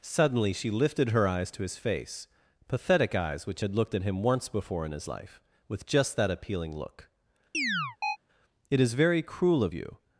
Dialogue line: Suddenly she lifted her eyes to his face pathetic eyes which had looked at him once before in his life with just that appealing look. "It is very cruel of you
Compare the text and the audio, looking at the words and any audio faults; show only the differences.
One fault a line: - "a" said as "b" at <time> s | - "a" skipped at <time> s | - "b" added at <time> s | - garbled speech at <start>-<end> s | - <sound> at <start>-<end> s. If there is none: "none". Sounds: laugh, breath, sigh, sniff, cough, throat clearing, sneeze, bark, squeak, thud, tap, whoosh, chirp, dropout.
- chirp at 7.5-8.2 s